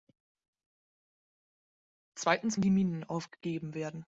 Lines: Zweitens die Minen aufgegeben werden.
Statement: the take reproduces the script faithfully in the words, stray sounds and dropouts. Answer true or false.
true